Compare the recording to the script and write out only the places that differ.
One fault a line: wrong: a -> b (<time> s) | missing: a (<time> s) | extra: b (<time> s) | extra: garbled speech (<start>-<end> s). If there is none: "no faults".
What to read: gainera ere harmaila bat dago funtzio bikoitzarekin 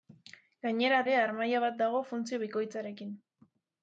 no faults